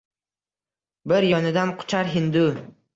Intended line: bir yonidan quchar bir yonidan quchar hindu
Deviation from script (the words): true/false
true